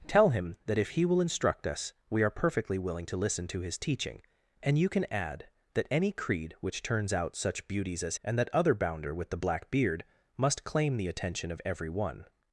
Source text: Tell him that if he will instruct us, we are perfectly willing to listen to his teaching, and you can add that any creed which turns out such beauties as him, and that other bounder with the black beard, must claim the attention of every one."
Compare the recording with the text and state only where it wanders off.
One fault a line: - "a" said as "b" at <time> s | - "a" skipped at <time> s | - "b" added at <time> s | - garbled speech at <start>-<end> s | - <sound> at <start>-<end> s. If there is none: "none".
- "him" skipped at 8.2 s